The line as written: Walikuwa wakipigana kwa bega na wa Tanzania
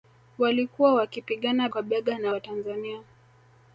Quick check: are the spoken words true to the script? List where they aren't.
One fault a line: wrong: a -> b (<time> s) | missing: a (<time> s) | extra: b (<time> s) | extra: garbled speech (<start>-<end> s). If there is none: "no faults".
no faults